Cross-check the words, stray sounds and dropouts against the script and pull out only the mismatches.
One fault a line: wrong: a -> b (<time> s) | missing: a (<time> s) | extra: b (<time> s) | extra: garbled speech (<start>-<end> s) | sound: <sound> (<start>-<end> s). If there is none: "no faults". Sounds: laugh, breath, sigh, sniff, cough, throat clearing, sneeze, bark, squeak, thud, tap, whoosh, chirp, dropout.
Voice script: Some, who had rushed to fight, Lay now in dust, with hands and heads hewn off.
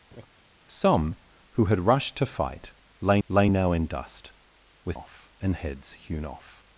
sound: laugh (0.1-0.3 s)
extra: Lay (3.3 s)
wrong: hands -> off (4.9 s)